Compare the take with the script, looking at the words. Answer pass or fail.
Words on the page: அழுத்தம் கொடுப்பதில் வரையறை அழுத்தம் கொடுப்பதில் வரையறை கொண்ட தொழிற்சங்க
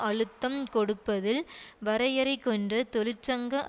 fail